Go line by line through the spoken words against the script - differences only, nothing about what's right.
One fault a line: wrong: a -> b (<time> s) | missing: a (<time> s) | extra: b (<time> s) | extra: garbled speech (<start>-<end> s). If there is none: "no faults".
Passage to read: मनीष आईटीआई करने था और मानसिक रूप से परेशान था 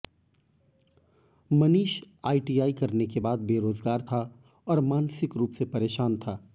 extra: के बाद बेरोजगार (3.1 s)